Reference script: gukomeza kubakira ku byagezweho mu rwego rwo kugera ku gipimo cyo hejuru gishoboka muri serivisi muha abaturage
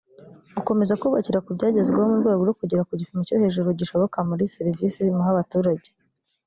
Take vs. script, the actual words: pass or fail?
pass